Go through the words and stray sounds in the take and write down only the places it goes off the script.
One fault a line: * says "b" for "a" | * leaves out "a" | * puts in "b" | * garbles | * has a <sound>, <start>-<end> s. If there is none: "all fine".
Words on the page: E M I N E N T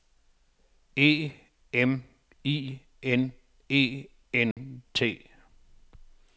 * has a dropout, 4.5-4.6 s